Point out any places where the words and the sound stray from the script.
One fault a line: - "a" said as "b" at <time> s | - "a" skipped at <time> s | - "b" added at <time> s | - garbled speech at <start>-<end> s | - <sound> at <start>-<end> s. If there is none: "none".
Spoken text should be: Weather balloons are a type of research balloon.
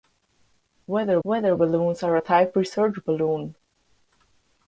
- "weather" added at 1.2 s
- "of" skipped at 2.5 s